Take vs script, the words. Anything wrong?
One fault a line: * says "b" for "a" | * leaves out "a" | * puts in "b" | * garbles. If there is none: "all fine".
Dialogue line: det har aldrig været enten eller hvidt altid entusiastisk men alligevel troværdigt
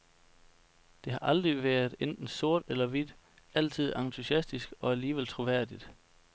* puts in "sort"
* says "og" for "men"